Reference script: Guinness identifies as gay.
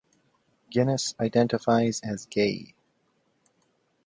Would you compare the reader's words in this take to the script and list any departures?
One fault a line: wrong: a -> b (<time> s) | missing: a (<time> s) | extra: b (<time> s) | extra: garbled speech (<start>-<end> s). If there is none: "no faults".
no faults